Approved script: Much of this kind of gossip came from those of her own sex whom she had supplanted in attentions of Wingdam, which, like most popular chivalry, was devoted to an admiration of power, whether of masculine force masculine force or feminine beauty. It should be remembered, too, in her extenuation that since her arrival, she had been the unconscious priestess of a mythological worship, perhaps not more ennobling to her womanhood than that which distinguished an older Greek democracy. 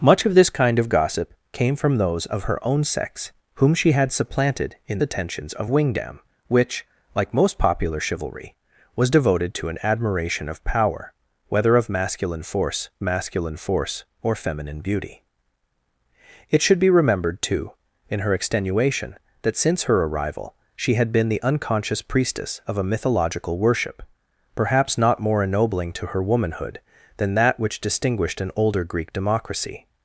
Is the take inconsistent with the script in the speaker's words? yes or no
no